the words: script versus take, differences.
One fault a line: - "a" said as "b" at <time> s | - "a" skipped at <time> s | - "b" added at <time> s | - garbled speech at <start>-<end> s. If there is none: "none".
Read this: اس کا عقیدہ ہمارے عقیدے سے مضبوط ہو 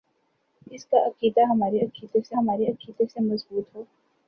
- "ہمارے عقیدے سے" added at 2.4 s